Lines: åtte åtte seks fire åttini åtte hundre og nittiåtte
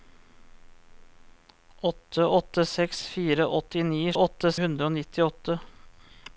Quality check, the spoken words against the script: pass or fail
pass